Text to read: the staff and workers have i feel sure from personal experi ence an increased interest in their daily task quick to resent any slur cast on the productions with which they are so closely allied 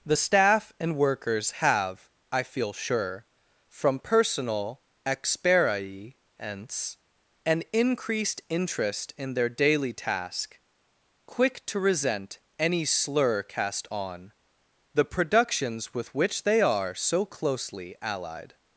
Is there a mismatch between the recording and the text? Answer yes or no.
no